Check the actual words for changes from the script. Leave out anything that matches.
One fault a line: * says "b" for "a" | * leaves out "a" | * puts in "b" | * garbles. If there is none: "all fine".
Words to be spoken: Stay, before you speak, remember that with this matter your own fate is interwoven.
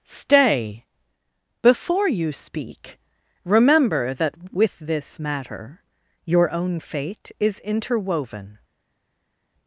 all fine